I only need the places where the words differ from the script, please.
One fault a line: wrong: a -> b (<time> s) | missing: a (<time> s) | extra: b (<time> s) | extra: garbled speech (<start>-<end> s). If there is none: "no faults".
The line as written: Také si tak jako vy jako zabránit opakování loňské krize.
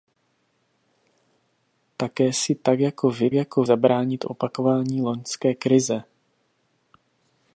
no faults